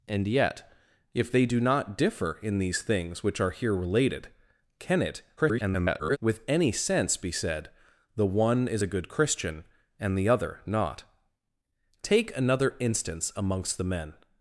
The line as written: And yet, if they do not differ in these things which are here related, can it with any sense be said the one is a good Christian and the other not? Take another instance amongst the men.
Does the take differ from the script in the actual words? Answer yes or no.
yes